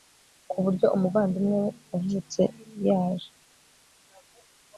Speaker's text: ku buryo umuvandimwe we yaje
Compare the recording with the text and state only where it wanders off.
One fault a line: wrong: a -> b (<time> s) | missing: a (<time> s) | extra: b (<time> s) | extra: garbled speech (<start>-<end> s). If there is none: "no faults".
extra: wavutse (1.9 s)